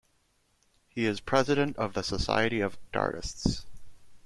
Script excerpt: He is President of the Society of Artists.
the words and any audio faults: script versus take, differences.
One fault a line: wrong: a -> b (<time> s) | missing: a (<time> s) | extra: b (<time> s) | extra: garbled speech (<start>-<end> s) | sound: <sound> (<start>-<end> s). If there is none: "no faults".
no faults